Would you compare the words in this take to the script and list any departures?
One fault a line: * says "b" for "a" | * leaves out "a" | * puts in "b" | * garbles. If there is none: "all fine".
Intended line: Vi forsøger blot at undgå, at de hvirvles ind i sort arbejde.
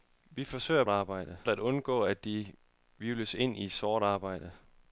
* says "arbejde" for "blot"